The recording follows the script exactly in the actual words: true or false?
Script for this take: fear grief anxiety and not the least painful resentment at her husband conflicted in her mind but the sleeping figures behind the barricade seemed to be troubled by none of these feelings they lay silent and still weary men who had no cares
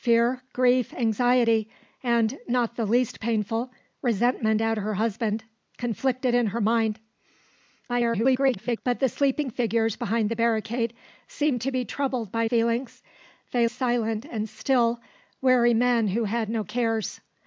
false